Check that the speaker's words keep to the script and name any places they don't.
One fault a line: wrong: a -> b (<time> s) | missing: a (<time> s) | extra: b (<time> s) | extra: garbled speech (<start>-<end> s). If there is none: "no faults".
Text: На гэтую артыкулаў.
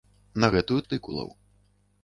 no faults